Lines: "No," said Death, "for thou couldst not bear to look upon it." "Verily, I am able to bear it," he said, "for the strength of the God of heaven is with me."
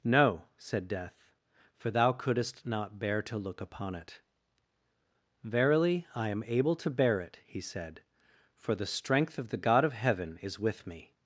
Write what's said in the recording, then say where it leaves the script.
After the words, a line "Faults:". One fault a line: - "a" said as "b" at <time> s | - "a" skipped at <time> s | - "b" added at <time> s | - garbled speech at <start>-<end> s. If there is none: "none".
"No," said Death, "for thou couldst not bear to look upon it." "Verily, I am able to bear it," he said, "for the strength of the God of heaven is with me."
Faults:
none